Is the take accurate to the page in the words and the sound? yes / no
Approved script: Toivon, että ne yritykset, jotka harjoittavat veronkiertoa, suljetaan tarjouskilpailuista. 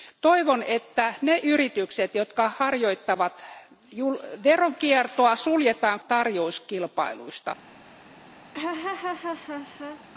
no